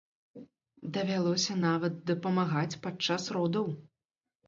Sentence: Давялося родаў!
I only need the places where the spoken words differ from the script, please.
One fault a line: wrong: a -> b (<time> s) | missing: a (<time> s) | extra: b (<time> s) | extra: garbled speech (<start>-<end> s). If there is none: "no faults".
extra: нават дапамагаць падчас (1.7 s)